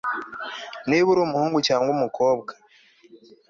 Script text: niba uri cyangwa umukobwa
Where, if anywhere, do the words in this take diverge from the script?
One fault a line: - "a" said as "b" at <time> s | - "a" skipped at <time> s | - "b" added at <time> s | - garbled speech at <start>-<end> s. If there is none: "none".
- "umuhungu" added at 1.2 s